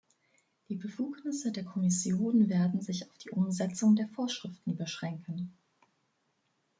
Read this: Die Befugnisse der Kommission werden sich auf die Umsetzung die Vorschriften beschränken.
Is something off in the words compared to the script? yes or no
yes